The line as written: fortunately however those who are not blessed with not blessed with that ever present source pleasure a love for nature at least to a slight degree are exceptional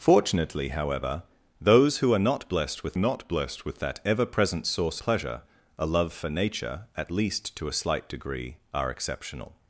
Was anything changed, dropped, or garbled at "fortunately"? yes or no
no